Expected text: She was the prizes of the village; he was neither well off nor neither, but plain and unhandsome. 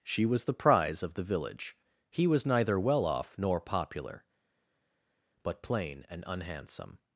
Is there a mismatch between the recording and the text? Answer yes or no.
yes